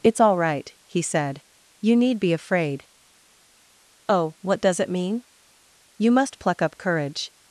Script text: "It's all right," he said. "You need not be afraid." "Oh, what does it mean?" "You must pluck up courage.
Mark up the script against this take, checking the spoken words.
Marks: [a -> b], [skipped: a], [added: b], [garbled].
"It's all right," he said. "You need [skipped: not] be afraid." "Oh, what does it mean?" "You must pluck up courage.